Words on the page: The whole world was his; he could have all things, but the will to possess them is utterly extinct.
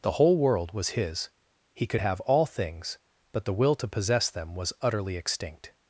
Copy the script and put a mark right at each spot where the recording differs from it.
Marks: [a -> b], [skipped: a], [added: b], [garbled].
The whole world was his; he could have all things, but the will to possess them [is -> was] utterly extinct.